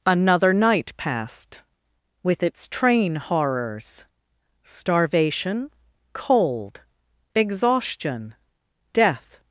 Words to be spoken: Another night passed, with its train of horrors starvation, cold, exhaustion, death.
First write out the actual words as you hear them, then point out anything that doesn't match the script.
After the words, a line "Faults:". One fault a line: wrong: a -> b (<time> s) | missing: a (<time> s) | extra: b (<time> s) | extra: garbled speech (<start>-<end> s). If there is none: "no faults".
Another night passed, with its train horrors starvation, cold, exhaustion, death.
Faults:
missing: of (3.2 s)